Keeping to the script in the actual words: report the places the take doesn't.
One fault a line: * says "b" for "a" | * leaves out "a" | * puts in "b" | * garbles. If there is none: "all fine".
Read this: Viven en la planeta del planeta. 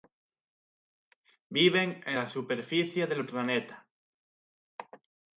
* says "superficie" for "planeta"